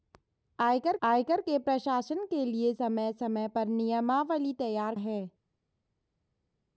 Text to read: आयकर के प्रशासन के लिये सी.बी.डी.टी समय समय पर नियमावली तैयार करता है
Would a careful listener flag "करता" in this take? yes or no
yes